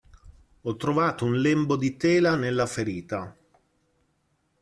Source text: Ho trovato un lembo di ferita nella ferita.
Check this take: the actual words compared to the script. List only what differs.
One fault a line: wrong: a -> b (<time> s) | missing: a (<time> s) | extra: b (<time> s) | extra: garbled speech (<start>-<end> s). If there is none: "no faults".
wrong: ferita -> tela (1.9 s)